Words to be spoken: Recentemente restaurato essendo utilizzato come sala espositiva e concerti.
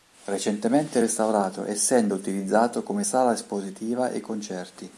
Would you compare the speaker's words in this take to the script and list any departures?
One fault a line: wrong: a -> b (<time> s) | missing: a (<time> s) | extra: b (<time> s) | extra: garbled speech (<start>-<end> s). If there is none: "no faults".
no faults